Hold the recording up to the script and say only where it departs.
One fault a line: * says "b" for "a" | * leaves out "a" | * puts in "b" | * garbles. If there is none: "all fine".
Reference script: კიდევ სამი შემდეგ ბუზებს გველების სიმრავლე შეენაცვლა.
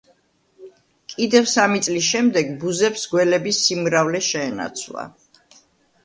* puts in "წლის"